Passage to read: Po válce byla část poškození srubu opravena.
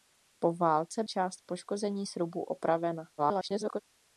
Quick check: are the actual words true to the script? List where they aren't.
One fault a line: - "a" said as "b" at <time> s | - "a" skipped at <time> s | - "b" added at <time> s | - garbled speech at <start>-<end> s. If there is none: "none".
- "byla" skipped at 1.0 s
- garbled speech at 3.2-3.8 s